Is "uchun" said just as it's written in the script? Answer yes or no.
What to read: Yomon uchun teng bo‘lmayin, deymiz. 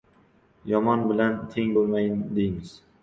no